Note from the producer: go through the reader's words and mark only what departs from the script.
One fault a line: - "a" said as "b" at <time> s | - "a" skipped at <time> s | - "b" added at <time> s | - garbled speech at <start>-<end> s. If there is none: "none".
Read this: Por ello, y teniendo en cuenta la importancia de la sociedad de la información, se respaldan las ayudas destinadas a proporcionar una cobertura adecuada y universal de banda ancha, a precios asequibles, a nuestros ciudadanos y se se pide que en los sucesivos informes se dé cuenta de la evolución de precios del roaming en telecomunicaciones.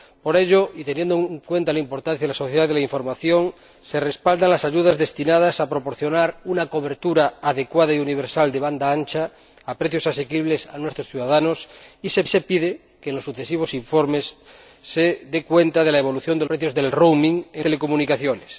none